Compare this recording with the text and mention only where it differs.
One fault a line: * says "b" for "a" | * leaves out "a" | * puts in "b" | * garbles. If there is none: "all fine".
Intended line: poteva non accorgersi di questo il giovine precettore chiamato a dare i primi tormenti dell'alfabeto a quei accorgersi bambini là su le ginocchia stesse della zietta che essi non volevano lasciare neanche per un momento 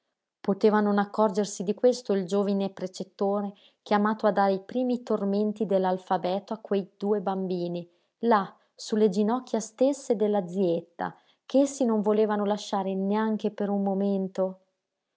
* says "due" for "accorgersi"